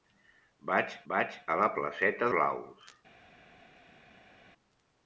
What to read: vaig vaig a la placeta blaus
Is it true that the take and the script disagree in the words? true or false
false